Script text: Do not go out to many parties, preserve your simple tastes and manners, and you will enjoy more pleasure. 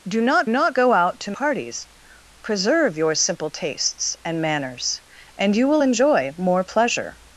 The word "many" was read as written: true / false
false